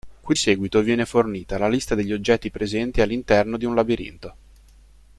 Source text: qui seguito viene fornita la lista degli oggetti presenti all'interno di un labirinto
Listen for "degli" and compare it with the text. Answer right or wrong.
right